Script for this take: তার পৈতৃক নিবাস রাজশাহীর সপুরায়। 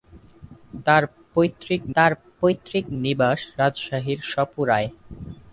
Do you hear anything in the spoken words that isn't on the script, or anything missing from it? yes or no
yes